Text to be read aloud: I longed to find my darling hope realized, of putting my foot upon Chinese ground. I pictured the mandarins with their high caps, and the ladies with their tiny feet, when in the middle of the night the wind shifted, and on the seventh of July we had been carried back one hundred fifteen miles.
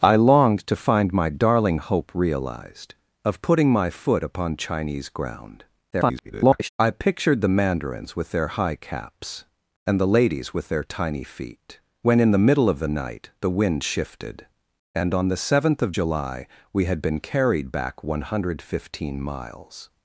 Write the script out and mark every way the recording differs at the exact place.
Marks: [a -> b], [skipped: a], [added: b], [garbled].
I longed to find my darling hope realized, of putting my foot upon Chinese ground. [garbled] I pictured the mandarins with their high caps, and the ladies with their tiny feet, when in the middle of the night the wind shifted, and on the seventh of July we had been carried back one hundred fifteen miles.